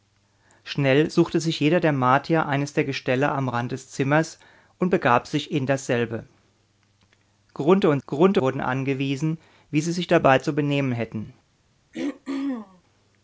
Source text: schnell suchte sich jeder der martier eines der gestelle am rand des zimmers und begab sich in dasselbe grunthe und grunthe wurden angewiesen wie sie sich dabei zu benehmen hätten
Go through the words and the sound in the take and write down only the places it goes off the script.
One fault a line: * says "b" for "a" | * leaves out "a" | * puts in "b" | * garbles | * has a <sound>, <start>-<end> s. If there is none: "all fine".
* has a throat clearing, 11.9-12.8 s